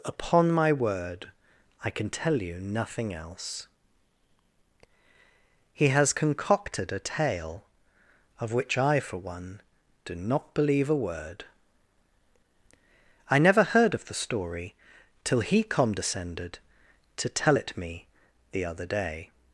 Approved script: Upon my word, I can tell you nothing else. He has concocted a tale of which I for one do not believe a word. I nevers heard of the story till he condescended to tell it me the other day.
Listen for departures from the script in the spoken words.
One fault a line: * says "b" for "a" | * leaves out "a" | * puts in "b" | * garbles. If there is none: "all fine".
* says "never" for "nevers"